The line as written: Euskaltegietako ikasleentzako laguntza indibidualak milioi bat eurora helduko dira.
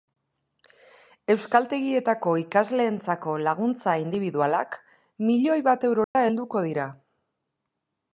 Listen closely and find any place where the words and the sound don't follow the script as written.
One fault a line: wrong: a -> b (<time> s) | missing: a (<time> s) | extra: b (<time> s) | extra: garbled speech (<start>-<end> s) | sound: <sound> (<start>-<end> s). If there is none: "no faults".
sound: dropout (6.0-6.2 s)